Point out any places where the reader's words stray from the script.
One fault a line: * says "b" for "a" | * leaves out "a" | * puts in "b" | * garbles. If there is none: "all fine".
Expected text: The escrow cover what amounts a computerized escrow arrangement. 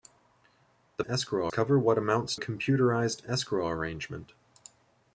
all fine